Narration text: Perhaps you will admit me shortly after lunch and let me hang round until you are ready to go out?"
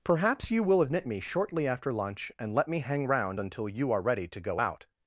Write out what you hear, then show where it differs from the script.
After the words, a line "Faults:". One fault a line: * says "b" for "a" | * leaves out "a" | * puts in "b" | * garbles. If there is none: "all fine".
Perhaps you will admit me shortly after lunch and let me hang round until you are ready to go out?"
Faults:
all fine